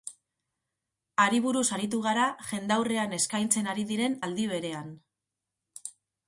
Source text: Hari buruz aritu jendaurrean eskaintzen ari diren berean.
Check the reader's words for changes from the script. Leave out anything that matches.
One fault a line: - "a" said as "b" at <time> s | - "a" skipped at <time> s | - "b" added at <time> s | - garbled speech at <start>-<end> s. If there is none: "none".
- "gara" added at 2.1 s
- "aldi" added at 4.3 s